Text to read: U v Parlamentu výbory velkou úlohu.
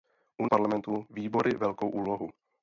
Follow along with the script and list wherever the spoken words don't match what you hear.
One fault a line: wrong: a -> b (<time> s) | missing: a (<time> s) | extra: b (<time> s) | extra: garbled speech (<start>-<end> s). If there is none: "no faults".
no faults